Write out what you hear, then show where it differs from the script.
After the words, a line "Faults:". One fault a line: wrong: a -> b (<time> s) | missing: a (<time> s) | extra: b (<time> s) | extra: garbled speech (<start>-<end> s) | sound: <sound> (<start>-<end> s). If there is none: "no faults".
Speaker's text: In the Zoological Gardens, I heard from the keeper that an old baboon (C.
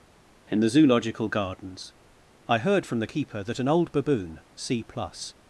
In the Zoological Gardens, I heard from the keeper that an old baboon (C. plus
Faults:
extra: plus (4.8 s)